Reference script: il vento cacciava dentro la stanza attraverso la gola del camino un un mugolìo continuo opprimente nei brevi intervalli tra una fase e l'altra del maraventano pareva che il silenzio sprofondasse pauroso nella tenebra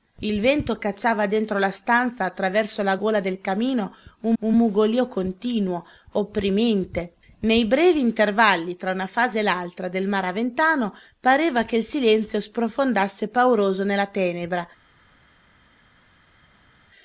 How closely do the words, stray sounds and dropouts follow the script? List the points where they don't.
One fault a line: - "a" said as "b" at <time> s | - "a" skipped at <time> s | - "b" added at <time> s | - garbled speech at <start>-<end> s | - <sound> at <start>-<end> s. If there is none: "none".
none